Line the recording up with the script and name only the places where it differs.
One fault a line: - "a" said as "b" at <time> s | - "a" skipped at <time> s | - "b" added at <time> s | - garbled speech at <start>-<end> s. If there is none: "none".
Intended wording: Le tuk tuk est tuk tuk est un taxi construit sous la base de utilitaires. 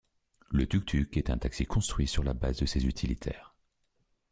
- "tuk tuk est" skipped at 1.3 s
- "sous" said as "sur" at 2.1 s
- "ces" added at 2.6 s